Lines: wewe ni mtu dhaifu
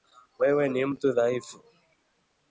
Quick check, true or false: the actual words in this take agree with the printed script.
true